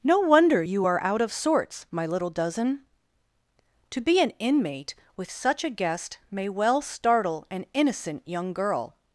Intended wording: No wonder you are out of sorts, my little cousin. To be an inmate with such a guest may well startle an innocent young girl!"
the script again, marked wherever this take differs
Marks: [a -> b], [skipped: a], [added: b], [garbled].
No wonder you are out of sorts, my little [cousin. -> dozen] To be an inmate with such a guest may well startle an innocent young girl!"